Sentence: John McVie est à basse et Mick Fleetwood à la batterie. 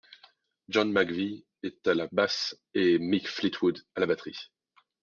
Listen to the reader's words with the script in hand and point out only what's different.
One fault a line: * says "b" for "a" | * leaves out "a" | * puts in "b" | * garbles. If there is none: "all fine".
* puts in "la"